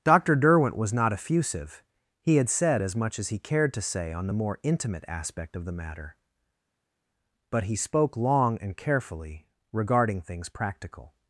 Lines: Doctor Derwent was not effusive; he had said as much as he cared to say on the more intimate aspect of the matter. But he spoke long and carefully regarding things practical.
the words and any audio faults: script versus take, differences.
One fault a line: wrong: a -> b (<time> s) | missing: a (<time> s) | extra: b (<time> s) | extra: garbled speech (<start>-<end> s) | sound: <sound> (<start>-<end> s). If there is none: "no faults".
no faults